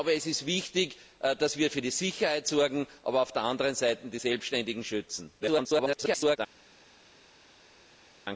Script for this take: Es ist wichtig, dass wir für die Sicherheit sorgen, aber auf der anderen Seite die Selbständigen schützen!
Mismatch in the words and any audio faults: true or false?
true